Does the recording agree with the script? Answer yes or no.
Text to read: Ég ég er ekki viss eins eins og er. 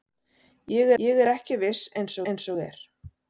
yes